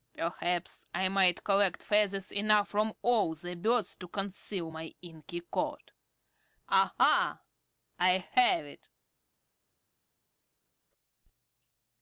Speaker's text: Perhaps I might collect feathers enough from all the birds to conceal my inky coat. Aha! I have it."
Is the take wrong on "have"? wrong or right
right